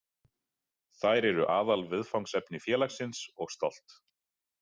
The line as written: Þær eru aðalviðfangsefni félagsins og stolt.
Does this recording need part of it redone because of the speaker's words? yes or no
no